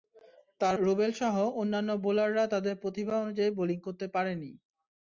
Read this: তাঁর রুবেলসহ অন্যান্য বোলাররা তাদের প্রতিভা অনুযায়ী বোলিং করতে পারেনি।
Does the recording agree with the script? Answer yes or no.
yes